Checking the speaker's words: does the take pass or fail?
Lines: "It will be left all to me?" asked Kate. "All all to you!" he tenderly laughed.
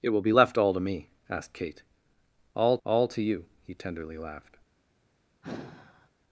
pass